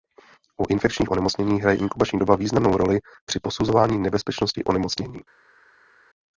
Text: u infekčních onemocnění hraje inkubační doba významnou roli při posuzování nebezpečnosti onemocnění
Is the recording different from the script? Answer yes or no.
no